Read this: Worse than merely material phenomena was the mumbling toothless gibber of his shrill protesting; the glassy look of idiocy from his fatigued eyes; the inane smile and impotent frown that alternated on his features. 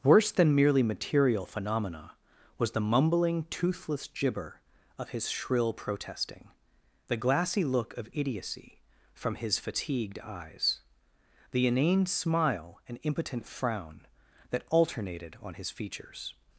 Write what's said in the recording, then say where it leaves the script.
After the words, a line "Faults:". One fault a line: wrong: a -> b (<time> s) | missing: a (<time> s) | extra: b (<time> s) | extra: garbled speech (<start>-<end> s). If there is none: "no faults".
Worse than merely material phenomena was the mumbling toothless gibber of his shrill protesting; the glassy look of idiocy from his fatigued eyes; the inane smile and impotent frown that alternated on his features.
Faults:
no faults